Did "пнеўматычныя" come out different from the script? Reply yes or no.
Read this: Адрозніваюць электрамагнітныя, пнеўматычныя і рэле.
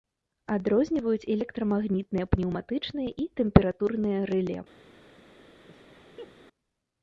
no